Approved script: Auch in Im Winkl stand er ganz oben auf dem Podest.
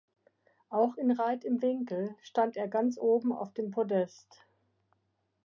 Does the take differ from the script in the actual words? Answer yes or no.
yes